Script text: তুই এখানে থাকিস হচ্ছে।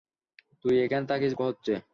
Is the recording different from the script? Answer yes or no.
no